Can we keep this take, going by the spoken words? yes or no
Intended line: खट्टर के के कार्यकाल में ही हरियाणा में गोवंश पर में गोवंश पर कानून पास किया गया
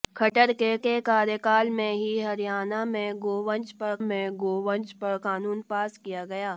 yes